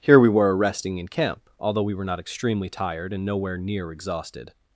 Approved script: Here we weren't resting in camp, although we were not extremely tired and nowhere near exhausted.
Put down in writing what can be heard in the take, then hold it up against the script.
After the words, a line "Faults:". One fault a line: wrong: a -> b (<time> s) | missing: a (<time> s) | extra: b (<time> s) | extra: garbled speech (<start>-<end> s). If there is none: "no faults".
Here we were resting in camp, although we were not extremely tired and nowhere near exhausted.
Faults:
wrong: weren't -> were (0.3 s)